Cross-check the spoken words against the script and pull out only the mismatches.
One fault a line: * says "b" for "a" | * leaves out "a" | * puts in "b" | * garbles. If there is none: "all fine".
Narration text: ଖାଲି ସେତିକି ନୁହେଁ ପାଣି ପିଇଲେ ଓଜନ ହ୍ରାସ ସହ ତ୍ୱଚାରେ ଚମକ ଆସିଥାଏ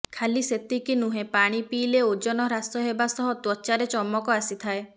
* puts in "ହେବା"